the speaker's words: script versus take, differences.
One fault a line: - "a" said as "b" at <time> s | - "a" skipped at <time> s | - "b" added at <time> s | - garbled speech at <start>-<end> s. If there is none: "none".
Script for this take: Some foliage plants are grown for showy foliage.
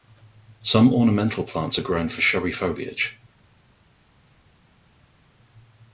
- "foliage" said as "ornamental" at 0.9 s